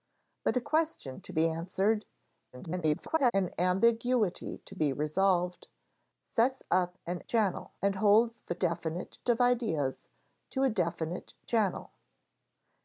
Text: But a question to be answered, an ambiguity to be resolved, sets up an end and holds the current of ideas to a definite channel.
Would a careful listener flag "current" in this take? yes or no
yes